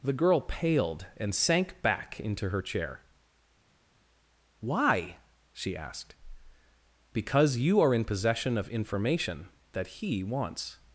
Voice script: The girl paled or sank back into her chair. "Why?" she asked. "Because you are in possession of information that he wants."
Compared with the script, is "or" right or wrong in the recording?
wrong